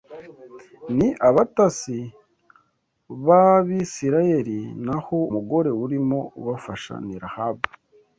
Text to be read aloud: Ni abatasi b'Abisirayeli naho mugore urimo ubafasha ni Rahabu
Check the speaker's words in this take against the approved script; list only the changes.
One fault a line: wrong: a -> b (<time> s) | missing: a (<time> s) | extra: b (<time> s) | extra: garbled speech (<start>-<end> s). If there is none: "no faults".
no faults